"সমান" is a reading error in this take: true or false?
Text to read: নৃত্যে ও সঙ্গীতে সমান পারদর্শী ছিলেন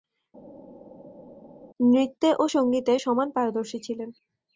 false